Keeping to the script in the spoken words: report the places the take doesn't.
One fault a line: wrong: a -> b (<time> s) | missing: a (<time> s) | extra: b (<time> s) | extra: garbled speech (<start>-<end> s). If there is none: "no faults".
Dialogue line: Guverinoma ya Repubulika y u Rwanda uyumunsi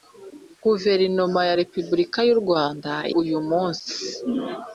no faults